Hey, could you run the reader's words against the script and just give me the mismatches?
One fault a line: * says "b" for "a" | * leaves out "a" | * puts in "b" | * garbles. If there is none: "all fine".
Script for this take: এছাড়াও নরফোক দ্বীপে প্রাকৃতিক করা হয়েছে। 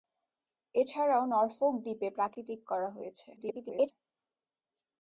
* garbles